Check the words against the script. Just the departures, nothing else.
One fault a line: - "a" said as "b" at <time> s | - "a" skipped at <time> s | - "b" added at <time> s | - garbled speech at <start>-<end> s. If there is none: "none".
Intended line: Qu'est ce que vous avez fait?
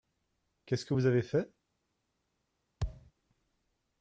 none